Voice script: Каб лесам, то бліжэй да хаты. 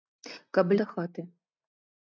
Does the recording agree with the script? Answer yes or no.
no